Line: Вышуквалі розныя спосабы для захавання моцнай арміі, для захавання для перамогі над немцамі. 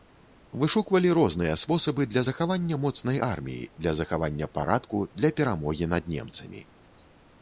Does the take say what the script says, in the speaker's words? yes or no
no